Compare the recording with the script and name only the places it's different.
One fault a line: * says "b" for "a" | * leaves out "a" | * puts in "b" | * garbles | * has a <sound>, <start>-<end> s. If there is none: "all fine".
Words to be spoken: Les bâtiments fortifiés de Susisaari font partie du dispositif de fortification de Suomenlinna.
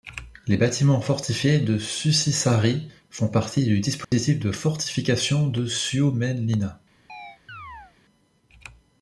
* has a dropout, 4.0-4.1 s
* has a chirp, 7.1-7.9 s